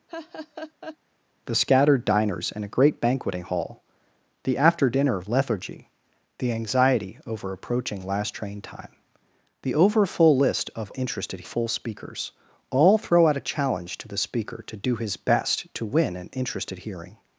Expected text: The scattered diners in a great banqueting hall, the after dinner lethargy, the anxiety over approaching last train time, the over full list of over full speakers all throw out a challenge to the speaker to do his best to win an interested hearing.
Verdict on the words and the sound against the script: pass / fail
fail